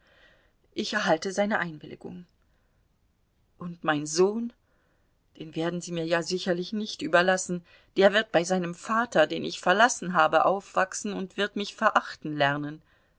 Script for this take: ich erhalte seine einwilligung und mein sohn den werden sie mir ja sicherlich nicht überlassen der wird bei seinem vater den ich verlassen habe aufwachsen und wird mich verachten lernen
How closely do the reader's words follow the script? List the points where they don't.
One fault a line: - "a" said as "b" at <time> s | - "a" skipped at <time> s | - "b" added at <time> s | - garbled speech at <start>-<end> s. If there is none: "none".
none